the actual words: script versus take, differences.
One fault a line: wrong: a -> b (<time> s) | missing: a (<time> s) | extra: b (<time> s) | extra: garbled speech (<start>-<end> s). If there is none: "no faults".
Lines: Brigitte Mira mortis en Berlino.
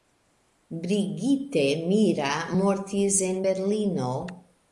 no faults